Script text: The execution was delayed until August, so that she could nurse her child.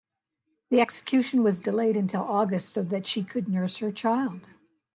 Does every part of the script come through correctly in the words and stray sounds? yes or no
yes